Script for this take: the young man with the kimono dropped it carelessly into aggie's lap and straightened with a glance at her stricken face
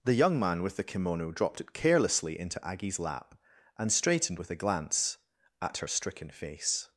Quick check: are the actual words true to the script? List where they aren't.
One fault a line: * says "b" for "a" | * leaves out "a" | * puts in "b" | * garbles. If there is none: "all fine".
all fine